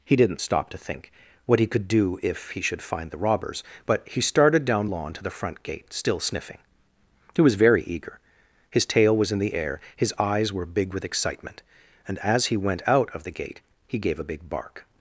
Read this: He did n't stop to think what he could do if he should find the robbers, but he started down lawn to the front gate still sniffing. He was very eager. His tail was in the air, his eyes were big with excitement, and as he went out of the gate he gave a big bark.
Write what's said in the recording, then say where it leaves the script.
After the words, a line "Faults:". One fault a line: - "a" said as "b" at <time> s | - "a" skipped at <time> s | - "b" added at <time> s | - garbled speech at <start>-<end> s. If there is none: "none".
He did n't stop to think what he could do if he should find the robbers, but he started down lawn to the front gate still sniffing. He was very eager. His tail was in the air, his eyes were big with excitement, and as he went out of the gate he gave a big bark.
Faults:
none